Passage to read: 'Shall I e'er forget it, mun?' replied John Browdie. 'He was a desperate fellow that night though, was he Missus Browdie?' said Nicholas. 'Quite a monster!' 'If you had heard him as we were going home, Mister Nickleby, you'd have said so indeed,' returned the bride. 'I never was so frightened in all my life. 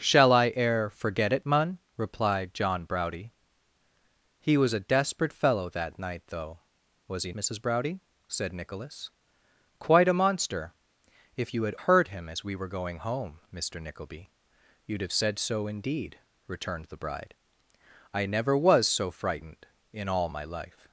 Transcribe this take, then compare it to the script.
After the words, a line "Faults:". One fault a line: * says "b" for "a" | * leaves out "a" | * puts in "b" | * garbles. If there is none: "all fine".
'Shall I e'er forget it, mun?' replied John Browdie. 'He was a desperate fellow that night though, was he Missus Browdie?' said Nicholas. 'Quite a monster!' 'If you had heard him as we were going home, Mister Nickleby, you'd have said so indeed,' returned the bride. 'I never was so frightened in all my life.
Faults:
all fine